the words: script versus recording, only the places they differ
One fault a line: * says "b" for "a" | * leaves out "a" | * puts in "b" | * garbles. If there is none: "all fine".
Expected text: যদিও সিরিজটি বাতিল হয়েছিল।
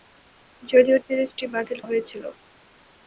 all fine